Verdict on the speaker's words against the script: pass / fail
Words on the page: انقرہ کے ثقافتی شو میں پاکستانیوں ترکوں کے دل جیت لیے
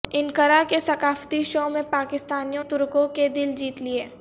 pass